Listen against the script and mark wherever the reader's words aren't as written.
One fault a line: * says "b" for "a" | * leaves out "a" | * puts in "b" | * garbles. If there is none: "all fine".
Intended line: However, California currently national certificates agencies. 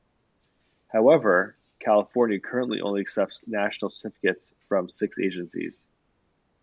* puts in "only accepts"
* puts in "from six"